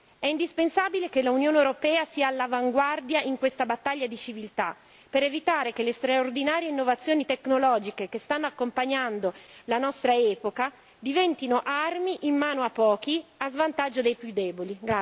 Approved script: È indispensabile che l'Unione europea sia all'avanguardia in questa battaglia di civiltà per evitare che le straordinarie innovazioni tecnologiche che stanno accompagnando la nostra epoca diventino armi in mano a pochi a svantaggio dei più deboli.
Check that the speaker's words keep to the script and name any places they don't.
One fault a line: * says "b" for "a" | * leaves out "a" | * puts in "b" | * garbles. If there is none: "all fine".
all fine